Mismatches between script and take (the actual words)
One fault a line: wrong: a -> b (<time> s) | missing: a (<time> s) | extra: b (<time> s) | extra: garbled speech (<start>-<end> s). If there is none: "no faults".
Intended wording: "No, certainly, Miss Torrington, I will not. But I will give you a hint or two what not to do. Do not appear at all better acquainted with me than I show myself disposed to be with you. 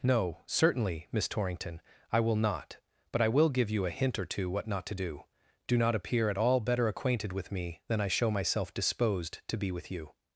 no faults